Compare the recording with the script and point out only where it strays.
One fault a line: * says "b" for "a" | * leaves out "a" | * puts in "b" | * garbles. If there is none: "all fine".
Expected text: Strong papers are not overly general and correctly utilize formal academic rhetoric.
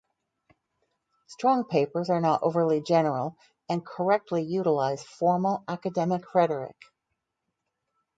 all fine